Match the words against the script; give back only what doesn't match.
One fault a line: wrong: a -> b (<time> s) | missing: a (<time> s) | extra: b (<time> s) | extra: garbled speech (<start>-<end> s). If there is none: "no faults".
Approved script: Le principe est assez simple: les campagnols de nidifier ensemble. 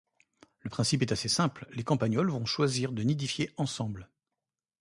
extra: vont choisir (2.3 s)